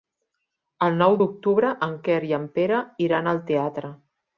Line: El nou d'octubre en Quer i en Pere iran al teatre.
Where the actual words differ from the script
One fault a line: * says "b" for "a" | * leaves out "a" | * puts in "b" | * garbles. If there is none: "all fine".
all fine